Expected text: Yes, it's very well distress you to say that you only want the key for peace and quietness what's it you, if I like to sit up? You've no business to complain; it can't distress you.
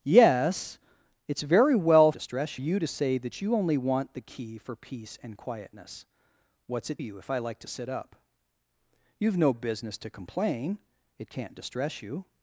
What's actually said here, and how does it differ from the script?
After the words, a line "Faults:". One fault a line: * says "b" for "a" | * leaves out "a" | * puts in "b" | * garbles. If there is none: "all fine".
Yes, it's very well distress you to say that you only want the key for peace and quietness what's it you, if I like to sit up? You've no business to complain; it can't distress you.
Faults:
all fine